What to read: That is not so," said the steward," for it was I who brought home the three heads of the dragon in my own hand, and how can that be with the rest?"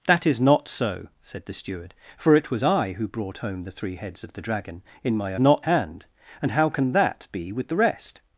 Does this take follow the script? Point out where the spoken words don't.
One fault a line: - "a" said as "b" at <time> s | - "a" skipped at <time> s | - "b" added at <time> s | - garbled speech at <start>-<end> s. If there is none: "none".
- "own" said as "not" at 5.4 s